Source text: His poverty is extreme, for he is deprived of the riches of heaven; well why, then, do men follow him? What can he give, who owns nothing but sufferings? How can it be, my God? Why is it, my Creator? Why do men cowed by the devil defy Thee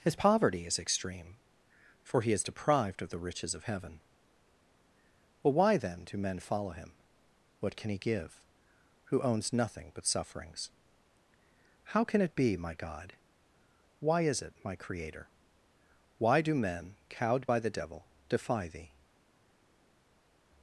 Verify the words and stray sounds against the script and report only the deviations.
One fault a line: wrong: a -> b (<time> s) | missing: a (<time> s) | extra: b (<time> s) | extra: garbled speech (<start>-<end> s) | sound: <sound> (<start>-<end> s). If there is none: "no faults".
no faults